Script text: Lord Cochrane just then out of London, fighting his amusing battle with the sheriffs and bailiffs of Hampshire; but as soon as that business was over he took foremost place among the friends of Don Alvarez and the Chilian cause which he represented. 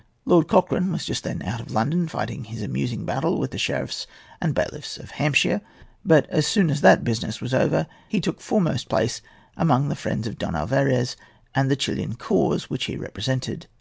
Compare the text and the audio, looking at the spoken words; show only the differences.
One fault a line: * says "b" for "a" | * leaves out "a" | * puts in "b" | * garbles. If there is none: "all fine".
* puts in "was"